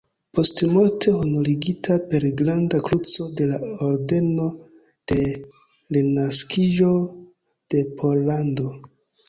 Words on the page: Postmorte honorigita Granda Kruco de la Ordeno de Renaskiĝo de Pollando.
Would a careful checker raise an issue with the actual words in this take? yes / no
yes